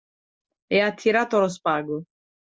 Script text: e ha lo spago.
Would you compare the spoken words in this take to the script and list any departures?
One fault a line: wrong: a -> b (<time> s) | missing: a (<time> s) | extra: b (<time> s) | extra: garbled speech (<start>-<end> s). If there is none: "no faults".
extra: tirato (0.9 s)